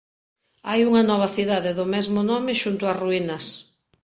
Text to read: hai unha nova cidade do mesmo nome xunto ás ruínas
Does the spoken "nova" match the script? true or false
true